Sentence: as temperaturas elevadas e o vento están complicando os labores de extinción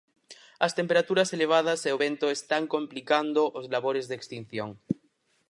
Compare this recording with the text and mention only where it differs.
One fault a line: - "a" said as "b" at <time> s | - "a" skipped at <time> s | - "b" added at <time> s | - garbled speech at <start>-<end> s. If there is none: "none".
none